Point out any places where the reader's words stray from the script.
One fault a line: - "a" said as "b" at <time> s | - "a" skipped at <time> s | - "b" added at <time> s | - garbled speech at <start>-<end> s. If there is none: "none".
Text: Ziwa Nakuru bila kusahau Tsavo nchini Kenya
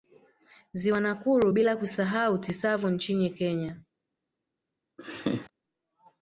none